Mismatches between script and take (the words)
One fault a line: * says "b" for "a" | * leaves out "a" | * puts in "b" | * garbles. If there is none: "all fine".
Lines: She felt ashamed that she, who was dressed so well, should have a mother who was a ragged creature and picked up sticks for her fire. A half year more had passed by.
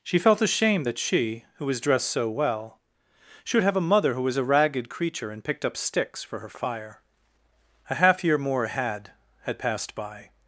* puts in "had"